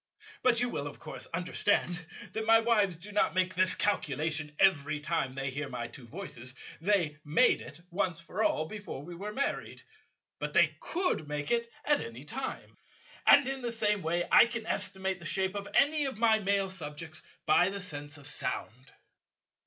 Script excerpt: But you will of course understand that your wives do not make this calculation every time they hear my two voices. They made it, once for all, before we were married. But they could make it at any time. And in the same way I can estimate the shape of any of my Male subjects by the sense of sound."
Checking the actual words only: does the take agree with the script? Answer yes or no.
no